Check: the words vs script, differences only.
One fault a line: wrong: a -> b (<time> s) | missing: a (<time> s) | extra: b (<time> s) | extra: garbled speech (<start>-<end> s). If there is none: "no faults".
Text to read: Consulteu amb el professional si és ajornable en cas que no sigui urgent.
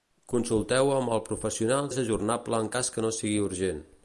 missing: si (1.9 s)